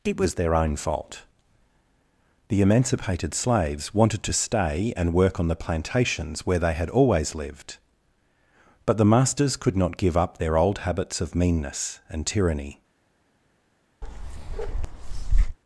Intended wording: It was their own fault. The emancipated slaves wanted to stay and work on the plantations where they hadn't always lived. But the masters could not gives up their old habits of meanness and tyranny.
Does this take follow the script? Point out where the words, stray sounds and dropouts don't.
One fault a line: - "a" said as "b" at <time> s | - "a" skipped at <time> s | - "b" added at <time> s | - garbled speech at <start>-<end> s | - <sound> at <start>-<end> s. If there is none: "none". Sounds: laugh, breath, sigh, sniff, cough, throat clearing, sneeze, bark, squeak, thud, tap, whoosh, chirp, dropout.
- "hadn't" said as "had" at 6.7 s
- "gives" said as "give" at 10.0 s
- bark at 14.0-15.6 s